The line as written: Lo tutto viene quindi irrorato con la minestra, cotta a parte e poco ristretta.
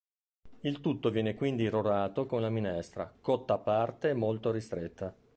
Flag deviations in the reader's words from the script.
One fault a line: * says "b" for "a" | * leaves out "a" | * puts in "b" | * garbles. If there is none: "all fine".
* says "Il" for "Lo"
* says "molto" for "poco"